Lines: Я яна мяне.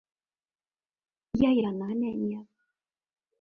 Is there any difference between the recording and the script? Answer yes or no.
no